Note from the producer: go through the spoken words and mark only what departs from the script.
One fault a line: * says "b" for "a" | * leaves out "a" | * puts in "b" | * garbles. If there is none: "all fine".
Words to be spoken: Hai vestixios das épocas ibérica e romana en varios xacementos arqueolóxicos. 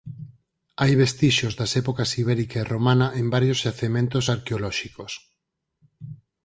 all fine